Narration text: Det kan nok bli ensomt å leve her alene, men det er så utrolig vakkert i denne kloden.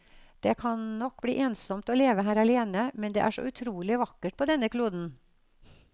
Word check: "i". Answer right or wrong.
wrong